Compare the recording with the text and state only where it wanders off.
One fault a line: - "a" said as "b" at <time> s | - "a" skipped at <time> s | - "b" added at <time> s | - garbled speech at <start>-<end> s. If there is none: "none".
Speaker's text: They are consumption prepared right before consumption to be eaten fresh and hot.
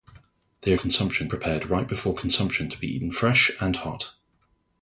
none